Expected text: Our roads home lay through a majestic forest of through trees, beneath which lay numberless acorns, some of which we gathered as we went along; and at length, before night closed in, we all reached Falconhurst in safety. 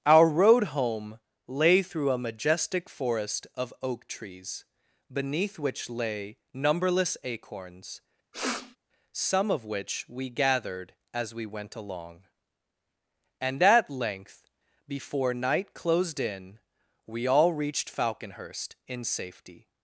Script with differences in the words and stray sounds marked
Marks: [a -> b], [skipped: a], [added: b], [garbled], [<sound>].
Our [roads -> road] home lay through a majestic forest of [through -> oak] trees, beneath which lay numberless acorns, [sniff] some of which we gathered as we went along; and at length, before night closed in, we all reached Falconhurst in safety.